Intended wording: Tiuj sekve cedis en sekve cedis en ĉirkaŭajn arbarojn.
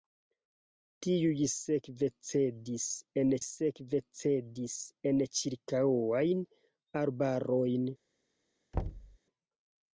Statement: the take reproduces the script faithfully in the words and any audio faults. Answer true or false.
false